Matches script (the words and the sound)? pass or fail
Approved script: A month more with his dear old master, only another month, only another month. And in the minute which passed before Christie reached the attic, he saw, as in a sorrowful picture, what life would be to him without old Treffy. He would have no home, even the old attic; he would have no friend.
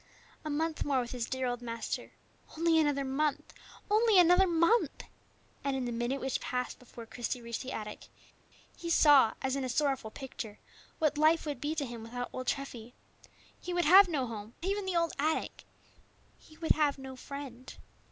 pass